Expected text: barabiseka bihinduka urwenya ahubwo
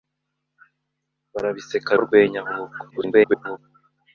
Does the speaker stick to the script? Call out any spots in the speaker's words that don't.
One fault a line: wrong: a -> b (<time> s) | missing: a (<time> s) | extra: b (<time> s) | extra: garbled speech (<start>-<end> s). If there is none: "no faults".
missing: bihinduka (1.9 s)
extra: garbled speech (2.9-3.6 s)